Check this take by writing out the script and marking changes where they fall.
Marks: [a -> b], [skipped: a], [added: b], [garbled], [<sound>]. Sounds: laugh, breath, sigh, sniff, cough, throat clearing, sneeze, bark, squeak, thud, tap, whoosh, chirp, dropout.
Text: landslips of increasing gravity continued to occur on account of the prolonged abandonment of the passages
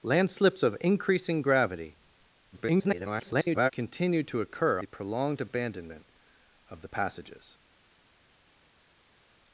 landslips of increasing gravity [garbled] continued to occur [skipped: on account of] the prolonged abandonment of the passages